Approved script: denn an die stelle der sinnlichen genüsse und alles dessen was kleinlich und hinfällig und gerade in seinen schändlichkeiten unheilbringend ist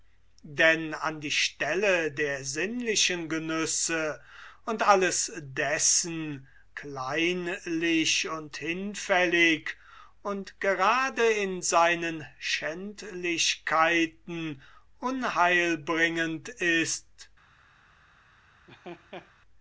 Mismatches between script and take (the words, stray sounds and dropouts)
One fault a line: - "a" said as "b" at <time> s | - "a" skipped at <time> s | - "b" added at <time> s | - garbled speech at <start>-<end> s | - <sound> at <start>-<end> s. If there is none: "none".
- "was" skipped at 6.5 s
- laugh at 18.7-19.3 s